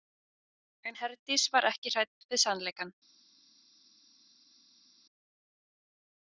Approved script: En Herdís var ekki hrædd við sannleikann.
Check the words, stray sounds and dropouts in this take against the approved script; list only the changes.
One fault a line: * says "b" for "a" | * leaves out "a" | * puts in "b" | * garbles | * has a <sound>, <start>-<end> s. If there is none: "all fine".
all fine